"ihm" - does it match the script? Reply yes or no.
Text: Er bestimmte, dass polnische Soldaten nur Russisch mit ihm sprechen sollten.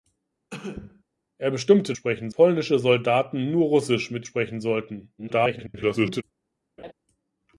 no